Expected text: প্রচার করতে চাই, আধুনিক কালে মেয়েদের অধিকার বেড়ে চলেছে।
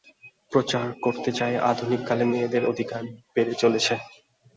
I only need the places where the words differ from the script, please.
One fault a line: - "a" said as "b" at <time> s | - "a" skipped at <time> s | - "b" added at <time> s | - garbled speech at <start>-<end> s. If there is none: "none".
none